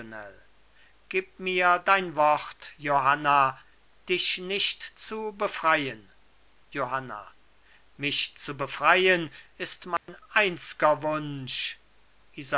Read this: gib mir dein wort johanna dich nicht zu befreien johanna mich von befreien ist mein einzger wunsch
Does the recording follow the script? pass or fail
fail